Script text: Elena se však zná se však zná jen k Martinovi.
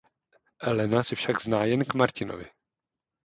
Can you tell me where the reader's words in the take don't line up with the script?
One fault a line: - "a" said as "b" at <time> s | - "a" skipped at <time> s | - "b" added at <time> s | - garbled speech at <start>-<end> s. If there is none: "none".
- "se však zná" skipped at 1.6 s